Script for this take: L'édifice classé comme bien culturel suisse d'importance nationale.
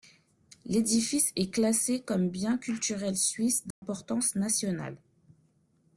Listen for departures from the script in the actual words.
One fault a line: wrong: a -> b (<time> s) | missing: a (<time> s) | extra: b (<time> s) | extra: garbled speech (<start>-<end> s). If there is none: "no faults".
extra: est (1.4 s)